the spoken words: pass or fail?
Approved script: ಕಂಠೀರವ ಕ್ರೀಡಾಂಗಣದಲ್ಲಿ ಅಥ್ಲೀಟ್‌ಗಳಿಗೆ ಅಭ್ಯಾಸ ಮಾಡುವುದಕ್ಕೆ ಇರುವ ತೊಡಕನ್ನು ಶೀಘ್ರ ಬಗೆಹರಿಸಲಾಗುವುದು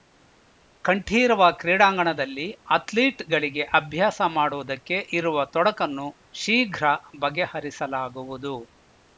pass